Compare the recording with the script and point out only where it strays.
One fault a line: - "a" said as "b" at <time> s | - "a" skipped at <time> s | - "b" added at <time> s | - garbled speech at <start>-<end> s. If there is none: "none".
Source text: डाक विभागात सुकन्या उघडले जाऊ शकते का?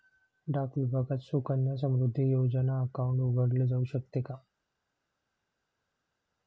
- "समृद्धी योजना अकाउंट" added at 1.8 s